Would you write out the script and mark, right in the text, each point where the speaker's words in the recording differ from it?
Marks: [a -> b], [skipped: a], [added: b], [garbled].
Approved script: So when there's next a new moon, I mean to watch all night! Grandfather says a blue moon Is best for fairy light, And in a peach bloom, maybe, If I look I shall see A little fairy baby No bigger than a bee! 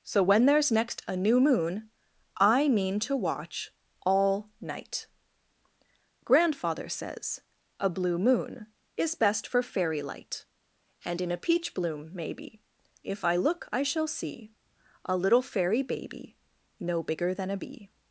So when there's next a new moon, I mean to watch all night! Grandfather says a blue moon Is best for fairy light, And in a peach bloom, maybe, If I look I shall see A little fairy baby No bigger than a bee!